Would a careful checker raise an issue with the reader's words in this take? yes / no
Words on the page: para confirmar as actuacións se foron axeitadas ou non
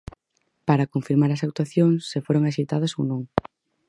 no